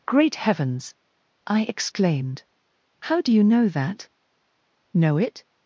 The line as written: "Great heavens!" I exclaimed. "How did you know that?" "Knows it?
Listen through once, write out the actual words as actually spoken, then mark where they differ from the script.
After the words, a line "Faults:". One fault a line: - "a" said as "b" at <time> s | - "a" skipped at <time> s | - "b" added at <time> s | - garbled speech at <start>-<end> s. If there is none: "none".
"Great heavens!" I exclaimed. "How do you know that?" "Know it?
Faults:
- "did" said as "do" at 3.2 s
- "Knows" said as "Know" at 4.9 s